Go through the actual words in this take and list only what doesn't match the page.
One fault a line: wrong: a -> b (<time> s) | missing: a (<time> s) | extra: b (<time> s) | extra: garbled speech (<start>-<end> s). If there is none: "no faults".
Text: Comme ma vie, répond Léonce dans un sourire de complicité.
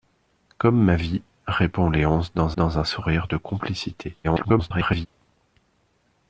extra: dans (2.5 s)
extra: garbled speech (4.2-5.1 s)